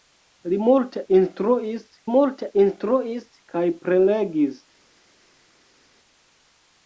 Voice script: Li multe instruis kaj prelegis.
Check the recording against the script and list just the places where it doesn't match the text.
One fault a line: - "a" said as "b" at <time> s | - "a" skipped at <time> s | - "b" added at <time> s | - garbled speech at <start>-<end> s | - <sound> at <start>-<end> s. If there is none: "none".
- "multe instruis" added at 2.1 s